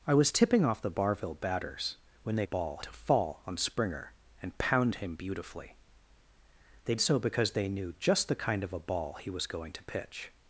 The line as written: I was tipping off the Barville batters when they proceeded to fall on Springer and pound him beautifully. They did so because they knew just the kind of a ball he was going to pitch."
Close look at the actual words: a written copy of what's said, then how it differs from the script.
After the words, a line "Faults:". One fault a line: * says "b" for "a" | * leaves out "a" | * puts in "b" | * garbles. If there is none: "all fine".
I was tipping off the Barville batters when they ball to fall on Springer and pound him beautifully. They so because they knew just the kind of a ball he was going to pitch."
Faults:
* says "ball" for "proceeded"
* leaves out "did"